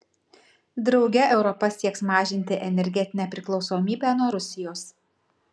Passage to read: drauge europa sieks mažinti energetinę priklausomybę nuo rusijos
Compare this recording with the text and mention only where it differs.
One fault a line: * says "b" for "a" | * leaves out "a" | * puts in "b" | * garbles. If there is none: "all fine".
all fine